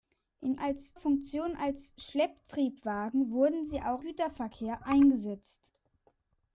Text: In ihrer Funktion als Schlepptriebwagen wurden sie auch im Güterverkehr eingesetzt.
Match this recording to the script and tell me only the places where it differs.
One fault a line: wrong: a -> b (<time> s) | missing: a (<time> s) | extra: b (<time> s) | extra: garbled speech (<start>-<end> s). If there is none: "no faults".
wrong: ihrer -> als (0.6 s)
missing: im (4.0 s)